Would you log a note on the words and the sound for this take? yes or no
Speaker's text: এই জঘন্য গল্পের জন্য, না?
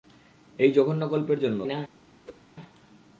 yes